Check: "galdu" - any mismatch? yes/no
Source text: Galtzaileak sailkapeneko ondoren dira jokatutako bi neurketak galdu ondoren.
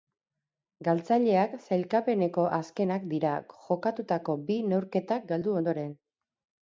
no